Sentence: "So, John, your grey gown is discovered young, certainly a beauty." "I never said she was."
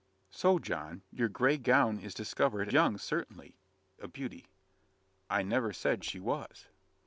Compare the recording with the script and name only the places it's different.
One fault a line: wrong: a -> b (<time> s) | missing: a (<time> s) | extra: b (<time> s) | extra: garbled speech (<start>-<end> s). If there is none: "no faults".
no faults